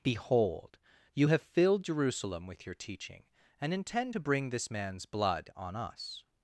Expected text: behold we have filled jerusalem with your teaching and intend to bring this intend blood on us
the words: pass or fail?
fail